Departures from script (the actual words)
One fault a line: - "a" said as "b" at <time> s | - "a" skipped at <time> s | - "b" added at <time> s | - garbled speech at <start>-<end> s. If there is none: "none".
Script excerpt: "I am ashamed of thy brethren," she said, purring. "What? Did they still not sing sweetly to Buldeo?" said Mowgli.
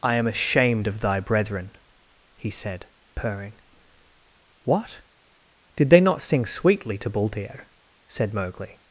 - "she" said as "he" at 2.4 s
- "still" skipped at 6.0 s